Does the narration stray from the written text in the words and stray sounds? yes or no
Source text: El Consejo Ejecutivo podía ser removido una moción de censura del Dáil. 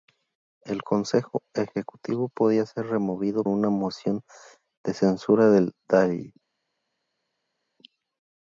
no